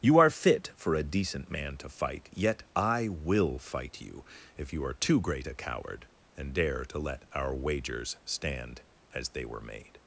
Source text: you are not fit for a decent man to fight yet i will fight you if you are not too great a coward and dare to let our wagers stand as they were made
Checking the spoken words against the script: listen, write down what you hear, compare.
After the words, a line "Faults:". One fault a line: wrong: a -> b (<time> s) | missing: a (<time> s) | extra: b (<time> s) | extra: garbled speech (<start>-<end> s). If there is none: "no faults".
you are fit for a decent man to fight yet i will fight you if you are too great a coward and dare to let our wagers stand as they were made
Faults:
missing: not (0.3 s)
missing: not (5.0 s)